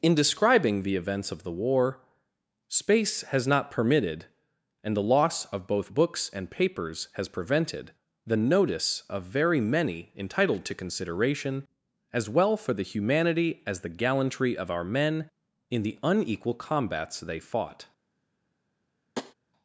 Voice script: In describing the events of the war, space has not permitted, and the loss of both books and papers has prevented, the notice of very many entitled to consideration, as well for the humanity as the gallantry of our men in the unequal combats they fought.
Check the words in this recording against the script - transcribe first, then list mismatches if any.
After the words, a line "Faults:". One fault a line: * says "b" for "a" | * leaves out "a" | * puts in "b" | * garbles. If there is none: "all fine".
In describing the events of the war, space has not permitted, and the loss of both books and papers has prevented, the notice of very many entitled to consideration, as well for the humanity as the gallantry of our men in the unequal combats they fought.
Faults:
all fine